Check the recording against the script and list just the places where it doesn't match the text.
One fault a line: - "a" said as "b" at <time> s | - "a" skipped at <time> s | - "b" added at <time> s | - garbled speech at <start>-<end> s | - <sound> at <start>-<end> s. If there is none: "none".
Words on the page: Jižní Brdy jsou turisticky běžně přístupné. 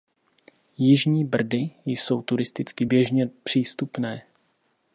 none